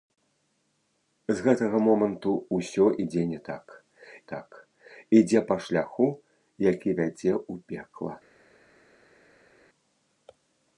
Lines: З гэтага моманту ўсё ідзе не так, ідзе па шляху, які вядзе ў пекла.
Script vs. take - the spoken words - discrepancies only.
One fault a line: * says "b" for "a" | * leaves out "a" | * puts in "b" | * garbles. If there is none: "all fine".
* puts in "так"